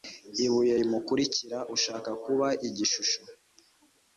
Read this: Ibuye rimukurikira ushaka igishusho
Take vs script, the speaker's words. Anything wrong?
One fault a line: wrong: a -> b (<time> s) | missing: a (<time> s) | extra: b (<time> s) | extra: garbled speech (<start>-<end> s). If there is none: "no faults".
extra: kuba (2.2 s)